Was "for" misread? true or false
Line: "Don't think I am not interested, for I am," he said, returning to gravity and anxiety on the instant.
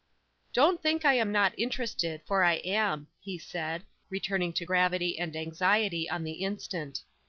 false